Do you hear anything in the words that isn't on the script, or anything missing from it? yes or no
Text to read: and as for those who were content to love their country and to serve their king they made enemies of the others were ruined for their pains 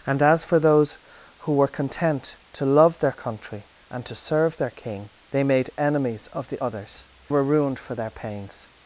no